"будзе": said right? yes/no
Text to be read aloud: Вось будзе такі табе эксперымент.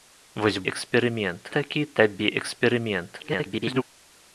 no